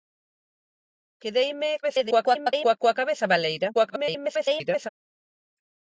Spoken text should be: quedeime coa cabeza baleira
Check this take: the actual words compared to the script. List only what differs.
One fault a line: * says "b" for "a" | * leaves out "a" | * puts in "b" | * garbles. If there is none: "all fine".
* garbles
* garbles